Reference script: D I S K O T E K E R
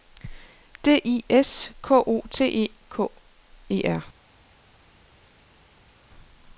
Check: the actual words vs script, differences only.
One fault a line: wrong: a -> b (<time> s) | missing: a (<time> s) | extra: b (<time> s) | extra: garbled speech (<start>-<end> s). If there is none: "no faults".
no faults